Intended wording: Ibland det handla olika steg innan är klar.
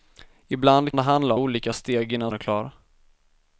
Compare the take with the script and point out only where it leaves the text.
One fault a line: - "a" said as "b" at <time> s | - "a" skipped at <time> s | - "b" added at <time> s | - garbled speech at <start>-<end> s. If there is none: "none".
none